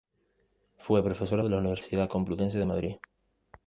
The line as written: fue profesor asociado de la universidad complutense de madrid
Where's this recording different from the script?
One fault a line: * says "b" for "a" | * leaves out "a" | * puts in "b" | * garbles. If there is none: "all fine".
* leaves out "asociado"